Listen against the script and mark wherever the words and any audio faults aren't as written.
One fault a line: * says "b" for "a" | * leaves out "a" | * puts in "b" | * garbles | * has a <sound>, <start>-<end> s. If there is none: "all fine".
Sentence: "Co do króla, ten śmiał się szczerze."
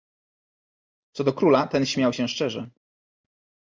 all fine